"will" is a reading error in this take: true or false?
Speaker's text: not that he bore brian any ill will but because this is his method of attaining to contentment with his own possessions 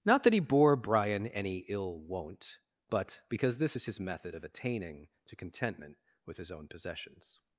true